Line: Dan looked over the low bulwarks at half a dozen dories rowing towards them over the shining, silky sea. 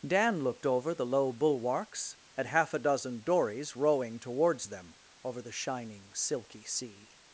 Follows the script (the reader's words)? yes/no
yes